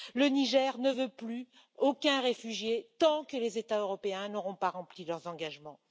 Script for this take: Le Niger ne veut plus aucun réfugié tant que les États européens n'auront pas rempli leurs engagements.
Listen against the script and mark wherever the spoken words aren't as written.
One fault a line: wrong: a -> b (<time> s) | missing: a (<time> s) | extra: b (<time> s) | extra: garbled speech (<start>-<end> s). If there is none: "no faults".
no faults